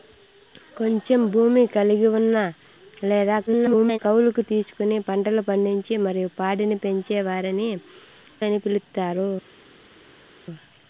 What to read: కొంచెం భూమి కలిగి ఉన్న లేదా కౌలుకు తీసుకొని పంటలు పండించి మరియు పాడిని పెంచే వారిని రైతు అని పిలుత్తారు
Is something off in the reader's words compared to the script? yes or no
yes